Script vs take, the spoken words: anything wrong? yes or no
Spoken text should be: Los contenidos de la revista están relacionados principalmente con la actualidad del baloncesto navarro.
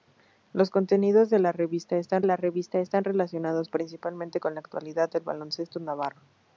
yes